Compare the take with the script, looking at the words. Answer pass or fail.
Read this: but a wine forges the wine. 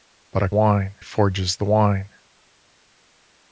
pass